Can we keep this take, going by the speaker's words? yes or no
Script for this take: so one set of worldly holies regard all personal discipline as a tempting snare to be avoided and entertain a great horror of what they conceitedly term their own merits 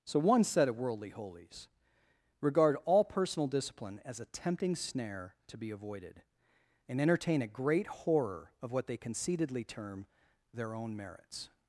yes